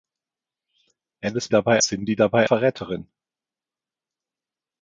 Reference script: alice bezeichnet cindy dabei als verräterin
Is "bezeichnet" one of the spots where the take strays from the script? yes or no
yes